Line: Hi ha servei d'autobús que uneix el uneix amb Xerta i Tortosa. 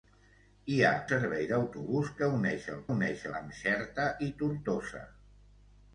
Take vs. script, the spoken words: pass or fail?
pass